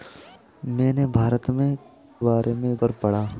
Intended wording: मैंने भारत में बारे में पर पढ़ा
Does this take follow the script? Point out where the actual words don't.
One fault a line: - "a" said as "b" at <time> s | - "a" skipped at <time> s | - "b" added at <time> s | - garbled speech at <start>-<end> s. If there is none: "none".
none